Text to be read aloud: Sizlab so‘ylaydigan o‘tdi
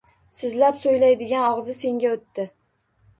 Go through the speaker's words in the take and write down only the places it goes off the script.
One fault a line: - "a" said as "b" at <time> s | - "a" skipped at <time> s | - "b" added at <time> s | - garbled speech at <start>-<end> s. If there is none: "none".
- "og‘zi senga" added at 1.5 s